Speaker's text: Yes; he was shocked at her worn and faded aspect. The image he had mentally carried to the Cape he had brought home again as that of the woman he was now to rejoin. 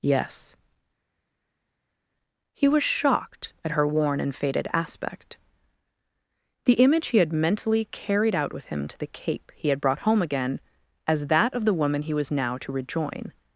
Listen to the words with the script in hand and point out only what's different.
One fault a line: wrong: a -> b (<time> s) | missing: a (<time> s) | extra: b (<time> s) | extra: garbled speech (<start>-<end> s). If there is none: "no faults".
extra: out with him (8.4 s)